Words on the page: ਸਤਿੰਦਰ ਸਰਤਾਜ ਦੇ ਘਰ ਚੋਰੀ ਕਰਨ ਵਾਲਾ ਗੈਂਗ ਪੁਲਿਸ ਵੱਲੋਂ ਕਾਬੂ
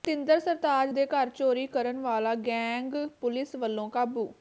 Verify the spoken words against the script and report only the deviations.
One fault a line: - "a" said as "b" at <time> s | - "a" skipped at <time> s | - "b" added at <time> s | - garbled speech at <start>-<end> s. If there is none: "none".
none